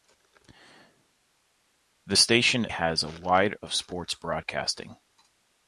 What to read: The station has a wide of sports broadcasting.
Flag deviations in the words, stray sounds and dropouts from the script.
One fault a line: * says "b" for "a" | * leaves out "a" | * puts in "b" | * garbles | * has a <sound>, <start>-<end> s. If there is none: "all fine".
all fine